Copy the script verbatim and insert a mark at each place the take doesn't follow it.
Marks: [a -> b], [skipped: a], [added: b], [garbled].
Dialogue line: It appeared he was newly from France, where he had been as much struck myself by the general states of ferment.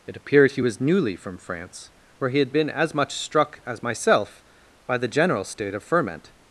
It appeared he was newly from France, where he had been as much struck [added: as] myself by the general [states -> state] of ferment.